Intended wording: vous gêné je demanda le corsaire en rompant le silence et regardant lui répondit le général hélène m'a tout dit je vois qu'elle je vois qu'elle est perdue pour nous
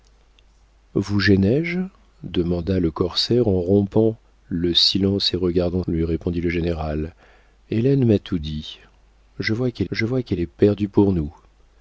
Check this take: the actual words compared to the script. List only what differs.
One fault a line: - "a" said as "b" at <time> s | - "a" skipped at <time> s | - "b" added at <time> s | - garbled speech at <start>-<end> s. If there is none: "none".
none